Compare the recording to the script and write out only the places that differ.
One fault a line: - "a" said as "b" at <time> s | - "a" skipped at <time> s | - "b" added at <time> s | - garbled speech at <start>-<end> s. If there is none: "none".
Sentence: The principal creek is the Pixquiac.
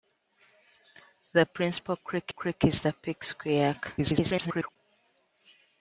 - "creek" added at 2.3 s
- garbled speech at 4.0-4.8 s